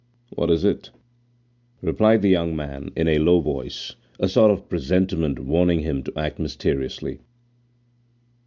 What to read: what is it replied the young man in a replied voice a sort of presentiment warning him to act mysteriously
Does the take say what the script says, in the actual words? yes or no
no